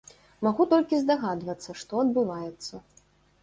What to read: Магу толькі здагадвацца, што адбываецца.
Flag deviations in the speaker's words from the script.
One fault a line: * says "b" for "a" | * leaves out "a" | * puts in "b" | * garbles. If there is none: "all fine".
all fine